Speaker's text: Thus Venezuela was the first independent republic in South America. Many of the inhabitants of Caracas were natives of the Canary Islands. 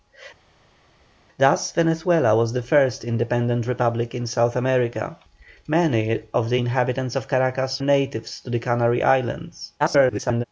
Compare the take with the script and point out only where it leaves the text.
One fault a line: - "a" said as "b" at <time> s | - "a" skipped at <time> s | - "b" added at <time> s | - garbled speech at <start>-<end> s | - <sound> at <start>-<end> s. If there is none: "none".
- "were" skipped at 7.8 s
- garbled speech at 9.8-10.4 s